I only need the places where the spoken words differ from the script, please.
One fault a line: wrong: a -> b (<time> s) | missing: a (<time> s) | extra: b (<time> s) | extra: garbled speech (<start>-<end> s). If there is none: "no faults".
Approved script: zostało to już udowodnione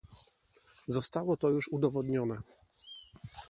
no faults